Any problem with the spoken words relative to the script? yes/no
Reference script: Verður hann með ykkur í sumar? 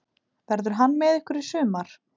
no